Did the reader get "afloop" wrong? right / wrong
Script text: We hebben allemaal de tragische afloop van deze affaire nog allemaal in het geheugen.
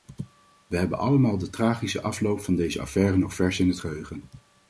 right